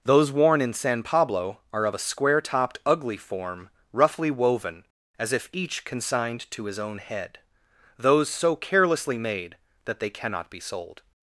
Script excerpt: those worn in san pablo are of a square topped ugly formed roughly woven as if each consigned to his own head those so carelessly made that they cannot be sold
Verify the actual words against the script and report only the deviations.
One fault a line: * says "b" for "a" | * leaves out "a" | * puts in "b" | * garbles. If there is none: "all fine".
* says "form" for "formed"